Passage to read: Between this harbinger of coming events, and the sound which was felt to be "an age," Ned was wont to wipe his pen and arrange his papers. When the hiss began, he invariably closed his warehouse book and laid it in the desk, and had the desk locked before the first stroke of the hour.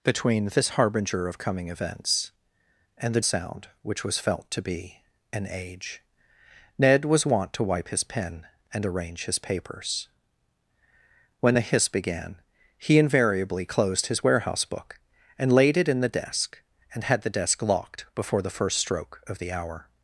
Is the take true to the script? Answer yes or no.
yes